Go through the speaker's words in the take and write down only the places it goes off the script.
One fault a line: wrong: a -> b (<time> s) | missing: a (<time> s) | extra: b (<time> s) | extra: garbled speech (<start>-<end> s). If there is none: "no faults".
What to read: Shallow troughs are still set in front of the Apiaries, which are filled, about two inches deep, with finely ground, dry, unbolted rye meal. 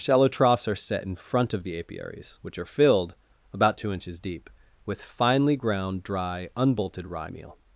missing: still (0.8 s)